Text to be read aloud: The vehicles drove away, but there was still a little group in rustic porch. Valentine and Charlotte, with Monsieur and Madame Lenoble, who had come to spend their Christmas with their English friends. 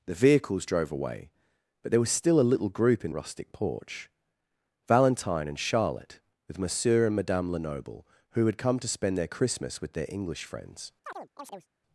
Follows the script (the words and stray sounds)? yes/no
no